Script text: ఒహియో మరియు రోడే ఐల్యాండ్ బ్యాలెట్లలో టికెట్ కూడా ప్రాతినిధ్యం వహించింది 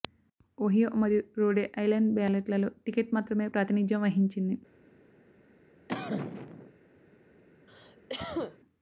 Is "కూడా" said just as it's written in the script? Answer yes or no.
no